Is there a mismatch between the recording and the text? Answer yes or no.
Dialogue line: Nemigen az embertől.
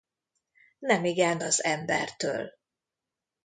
no